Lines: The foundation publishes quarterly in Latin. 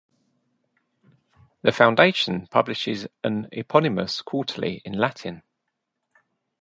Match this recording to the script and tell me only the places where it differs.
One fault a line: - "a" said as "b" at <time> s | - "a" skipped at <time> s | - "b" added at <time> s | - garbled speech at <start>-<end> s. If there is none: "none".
- "an eponymous" added at 3.2 s